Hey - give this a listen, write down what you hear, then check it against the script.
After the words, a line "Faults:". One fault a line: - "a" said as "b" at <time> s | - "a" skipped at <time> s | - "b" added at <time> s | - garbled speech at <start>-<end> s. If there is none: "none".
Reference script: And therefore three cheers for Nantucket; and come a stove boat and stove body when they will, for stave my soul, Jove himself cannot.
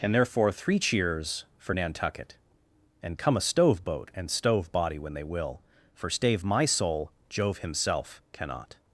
And therefore three cheers for Nantucket; and come a stove boat and stove body when they will, for stave my soul, Jove himself cannot.
Faults:
none